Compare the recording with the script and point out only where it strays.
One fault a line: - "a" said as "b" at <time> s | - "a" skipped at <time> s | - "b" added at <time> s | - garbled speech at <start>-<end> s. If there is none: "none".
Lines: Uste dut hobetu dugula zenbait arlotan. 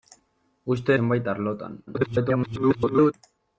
- "dut hobetu dugula" skipped at 0.9 s
- garbled speech at 1.9-3.1 s